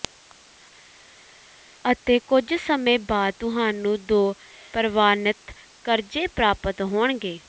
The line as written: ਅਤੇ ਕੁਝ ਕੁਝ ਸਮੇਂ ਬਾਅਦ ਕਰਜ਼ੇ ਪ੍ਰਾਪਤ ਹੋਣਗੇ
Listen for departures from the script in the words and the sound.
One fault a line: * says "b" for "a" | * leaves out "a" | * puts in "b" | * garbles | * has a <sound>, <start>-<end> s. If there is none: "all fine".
* leaves out "ਕੁਝ"
* puts in "ਤੁਹਾਨੂੰ ਦੋ ਪ੍ਰਵਾਨਿਤ"